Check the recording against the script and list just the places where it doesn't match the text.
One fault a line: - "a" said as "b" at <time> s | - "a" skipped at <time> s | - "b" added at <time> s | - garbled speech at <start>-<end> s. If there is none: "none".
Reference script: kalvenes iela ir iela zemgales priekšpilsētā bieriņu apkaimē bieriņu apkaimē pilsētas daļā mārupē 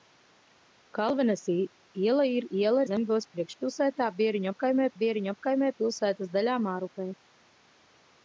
none